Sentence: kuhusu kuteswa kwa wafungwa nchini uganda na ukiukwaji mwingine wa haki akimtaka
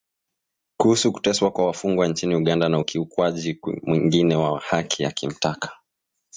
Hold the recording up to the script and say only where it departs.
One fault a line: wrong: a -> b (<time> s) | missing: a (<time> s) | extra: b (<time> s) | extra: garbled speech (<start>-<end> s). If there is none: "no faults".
no faults